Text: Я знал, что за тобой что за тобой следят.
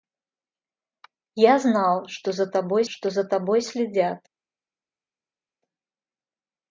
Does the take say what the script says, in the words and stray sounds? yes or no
yes